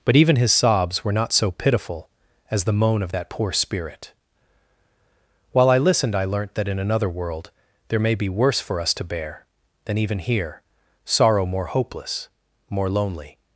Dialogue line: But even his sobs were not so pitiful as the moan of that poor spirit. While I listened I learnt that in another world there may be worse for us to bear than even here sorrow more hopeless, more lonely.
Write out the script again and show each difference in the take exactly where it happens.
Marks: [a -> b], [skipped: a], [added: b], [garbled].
But even his sobs were not so pitiful as the moan of that poor spirit. While I listened I learnt that in another world there may be worse for us to bear than even here sorrow more hopeless, more lonely.